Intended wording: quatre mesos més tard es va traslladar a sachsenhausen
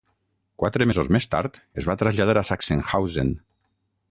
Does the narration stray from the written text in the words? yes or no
no